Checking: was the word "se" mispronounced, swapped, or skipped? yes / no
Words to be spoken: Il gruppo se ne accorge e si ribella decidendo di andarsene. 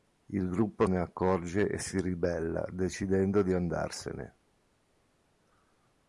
yes